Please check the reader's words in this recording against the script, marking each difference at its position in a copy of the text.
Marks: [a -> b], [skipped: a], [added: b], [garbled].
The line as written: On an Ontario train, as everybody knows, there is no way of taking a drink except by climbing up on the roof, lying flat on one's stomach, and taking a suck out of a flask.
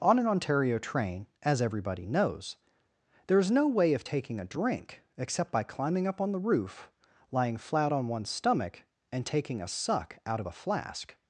On an Ontario train, as everybody knows, there is no way of taking a drink except by climbing up on the roof, lying flat on one's stomach, and taking a suck out of a flask.